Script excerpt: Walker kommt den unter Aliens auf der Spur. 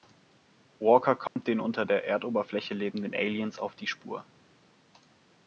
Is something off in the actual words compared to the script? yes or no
yes